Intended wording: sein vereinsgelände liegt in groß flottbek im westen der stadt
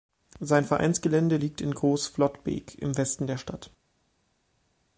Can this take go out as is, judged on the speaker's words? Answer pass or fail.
pass